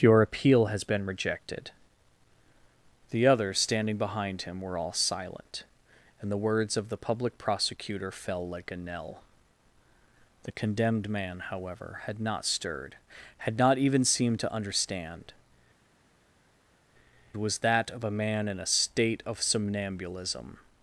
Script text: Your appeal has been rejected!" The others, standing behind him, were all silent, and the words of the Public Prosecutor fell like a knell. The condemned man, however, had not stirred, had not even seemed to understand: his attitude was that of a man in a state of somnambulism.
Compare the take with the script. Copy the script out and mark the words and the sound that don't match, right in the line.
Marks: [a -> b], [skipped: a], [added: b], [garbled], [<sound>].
Your appeal has been rejected!" The others, standing behind him, were all silent, and the words of the Public Prosecutor fell like a knell. The condemned man, however, had not stirred, had not even seemed to understand: [skipped: his attitude] was that of a man in a state of somnambulism.